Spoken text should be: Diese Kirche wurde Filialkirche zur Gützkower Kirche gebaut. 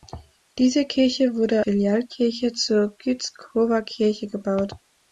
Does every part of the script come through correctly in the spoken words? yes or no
yes